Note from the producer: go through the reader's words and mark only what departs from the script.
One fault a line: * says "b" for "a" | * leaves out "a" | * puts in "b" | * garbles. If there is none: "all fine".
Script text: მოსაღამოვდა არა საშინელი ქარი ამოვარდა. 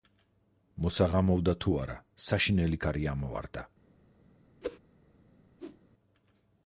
* puts in "თუ"